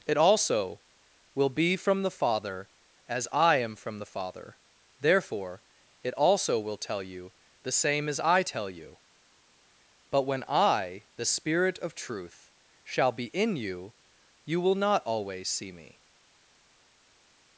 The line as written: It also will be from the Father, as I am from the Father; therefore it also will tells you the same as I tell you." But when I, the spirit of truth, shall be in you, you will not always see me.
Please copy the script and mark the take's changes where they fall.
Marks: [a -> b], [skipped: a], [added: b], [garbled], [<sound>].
It also will be from the Father, as I am from the Father; therefore it also will [tells -> tell] you the same as I tell you." But when I, the spirit of truth, shall be in you, you will not always see me.